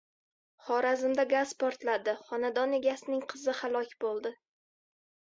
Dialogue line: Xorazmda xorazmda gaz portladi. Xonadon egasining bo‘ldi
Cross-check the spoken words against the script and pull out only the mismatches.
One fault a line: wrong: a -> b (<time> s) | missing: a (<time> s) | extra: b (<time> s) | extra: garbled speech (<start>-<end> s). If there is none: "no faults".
missing: xorazmda (1.2 s)
extra: qizi halok (3.3 s)